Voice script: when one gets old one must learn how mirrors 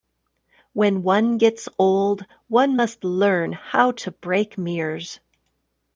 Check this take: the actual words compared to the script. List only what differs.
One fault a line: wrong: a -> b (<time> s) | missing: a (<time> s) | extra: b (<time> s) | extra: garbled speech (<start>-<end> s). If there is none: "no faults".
extra: to break (3.9 s)